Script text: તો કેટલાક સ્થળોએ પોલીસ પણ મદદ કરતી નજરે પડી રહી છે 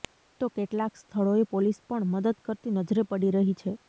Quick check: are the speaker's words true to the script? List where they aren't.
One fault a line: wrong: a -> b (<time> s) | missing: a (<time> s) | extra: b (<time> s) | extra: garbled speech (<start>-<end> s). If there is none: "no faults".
no faults